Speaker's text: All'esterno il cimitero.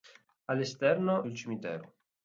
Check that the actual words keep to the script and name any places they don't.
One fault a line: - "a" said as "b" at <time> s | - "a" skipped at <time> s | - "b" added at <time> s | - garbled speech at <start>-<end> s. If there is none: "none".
none